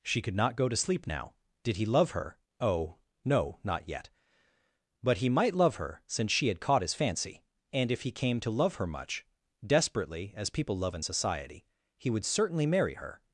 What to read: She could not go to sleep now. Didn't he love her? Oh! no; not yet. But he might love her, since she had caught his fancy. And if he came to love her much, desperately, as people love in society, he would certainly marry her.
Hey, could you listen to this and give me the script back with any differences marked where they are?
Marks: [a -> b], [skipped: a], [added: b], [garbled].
She could not go to sleep now. [Didn't -> Did] he love her? Oh! no; not yet. But he might love her, since she had caught his fancy. And if he came to love her much, desperately, as people love in society, he would certainly marry her.